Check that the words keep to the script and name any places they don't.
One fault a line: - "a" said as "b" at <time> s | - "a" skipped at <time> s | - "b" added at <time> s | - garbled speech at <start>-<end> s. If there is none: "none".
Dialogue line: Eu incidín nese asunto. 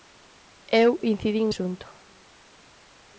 - "nese" skipped at 1.5 s